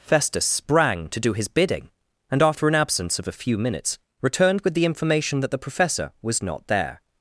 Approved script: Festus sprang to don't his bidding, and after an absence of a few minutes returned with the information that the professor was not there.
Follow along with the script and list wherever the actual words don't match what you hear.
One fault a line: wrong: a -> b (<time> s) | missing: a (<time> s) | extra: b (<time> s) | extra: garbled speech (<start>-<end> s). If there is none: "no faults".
wrong: don't -> do (1.2 s)